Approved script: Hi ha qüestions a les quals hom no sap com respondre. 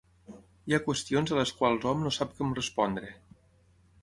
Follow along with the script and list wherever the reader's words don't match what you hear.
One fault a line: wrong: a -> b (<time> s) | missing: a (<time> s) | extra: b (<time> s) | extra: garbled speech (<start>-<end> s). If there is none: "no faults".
no faults